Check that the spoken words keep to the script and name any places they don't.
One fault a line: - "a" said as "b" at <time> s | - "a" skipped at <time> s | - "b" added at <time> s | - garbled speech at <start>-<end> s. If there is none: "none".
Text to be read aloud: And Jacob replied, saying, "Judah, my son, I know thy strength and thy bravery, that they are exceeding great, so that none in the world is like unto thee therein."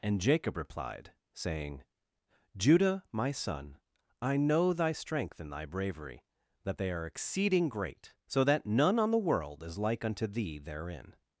- "in" said as "on" at 9.0 s